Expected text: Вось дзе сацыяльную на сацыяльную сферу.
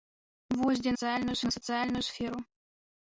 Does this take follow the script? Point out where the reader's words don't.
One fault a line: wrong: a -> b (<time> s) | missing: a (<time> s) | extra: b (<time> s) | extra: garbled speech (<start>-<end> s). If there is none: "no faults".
no faults